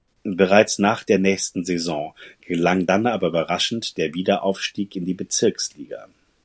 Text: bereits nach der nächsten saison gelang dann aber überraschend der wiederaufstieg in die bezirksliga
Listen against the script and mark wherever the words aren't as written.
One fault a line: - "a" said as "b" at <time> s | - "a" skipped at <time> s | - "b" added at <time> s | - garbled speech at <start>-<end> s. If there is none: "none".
none